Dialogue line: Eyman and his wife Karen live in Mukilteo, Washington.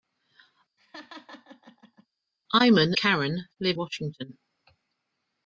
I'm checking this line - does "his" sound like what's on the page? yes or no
no